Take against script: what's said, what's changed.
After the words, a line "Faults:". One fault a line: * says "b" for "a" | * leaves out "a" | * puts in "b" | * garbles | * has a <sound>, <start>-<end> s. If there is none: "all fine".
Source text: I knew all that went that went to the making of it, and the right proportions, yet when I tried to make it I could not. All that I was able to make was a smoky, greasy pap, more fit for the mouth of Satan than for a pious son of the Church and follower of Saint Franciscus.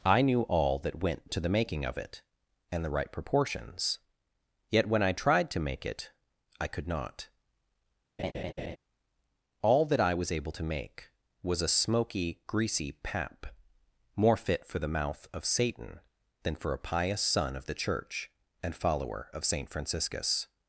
I knew all that went to the making of it, and the right proportions, yet when I tried to make it I could not. All that I was able to make was a smoky, greasy pap, more fit for the mouth of Satan than for a pious son of the Church and follower of Saint Franciscus.
Faults:
* leaves out "that went"
* has a laugh, 8.2-8.8 s